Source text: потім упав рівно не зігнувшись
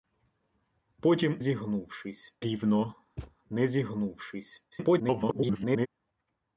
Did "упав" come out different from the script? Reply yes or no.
yes